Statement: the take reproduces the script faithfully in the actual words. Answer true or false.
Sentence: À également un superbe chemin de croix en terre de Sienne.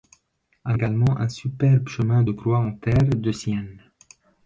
true